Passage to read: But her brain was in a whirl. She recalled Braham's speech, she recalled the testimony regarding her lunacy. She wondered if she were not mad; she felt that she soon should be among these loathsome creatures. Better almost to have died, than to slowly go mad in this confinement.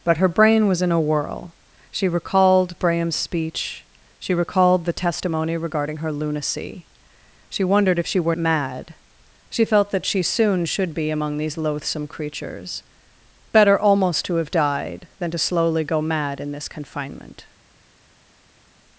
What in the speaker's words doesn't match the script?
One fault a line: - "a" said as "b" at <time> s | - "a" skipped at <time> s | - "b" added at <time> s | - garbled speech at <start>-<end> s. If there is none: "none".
- "not" skipped at 8.3 s